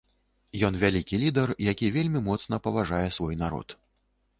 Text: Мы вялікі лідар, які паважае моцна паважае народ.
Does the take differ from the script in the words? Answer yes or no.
yes